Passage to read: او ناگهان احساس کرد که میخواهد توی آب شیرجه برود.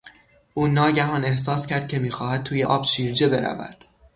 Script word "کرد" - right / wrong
right